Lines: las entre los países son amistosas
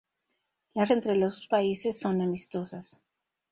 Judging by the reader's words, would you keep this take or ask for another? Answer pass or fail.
pass